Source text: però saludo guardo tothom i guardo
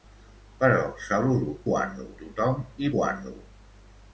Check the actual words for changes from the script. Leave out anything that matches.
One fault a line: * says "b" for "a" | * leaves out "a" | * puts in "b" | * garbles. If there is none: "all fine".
all fine